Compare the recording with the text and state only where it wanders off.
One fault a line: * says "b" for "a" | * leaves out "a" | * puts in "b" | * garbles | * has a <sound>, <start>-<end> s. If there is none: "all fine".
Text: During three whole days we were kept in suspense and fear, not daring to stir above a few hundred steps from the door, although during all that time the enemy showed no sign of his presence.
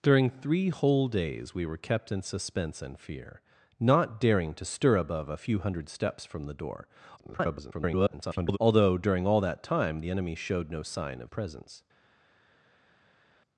* garbles
* leaves out "his"